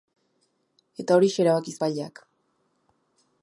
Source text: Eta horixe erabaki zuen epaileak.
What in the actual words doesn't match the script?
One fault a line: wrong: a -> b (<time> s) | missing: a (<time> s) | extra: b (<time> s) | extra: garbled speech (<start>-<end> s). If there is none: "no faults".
missing: zuen (1.8 s)